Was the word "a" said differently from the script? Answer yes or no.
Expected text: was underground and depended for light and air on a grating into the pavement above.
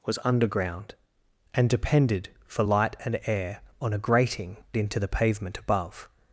no